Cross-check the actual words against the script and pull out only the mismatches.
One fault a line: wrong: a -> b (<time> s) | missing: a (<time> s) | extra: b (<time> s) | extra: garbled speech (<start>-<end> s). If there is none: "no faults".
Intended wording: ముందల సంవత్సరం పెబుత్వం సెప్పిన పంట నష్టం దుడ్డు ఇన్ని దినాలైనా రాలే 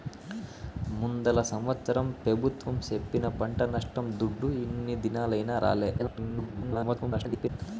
extra: garbled speech (6.0-7.5 s)